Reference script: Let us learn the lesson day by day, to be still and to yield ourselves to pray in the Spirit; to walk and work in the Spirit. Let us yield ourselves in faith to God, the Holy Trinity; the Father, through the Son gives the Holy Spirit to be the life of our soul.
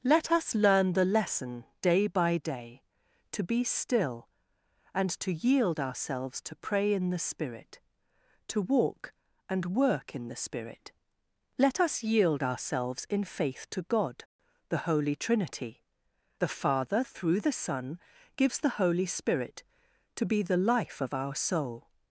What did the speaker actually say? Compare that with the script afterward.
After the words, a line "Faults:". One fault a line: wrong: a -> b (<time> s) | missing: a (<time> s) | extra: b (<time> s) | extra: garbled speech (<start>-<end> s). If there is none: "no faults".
Let us learn the lesson day by day, to be still and to yield ourselves to pray in the Spirit; to walk and work in the Spirit. Let us yield ourselves in faith to God, the Holy Trinity; the Father, through the Son gives the Holy Spirit to be the life of our soul.
Faults:
no faults